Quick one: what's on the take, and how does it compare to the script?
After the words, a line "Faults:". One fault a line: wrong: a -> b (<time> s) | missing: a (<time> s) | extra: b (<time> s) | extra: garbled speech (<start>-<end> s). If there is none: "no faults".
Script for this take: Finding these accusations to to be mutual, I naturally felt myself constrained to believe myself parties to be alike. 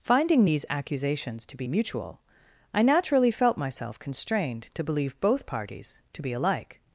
Finding these accusations to be mutual, I naturally felt myself constrained to believe both parties to be alike.
Faults:
missing: to (1.6 s)
wrong: myself -> both (5.2 s)